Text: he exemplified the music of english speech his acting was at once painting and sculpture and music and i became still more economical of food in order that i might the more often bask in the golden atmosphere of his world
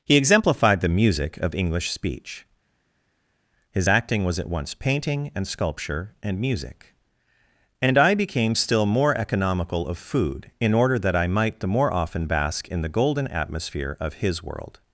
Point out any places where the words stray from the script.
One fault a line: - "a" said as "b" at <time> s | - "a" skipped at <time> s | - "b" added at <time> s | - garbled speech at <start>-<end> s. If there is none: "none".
none